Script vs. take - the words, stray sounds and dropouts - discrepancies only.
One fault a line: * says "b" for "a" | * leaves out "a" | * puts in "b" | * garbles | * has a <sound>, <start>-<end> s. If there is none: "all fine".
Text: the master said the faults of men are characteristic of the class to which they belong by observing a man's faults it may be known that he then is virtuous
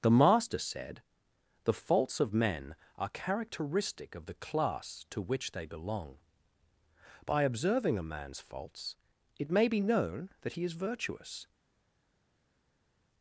* leaves out "then"